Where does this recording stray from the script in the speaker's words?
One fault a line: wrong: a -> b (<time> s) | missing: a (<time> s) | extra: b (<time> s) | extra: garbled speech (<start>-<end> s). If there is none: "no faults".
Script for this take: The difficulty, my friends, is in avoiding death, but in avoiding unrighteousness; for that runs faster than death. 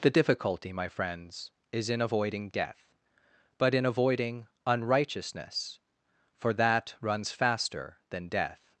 no faults